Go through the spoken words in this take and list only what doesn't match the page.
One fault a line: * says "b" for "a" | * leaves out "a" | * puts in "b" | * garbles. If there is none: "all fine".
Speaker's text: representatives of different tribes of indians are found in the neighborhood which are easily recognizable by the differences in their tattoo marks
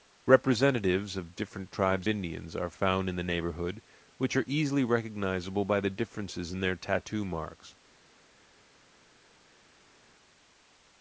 * leaves out "of"